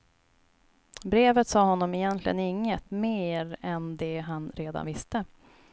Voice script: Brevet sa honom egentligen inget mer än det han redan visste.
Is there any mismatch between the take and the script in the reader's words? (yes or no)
no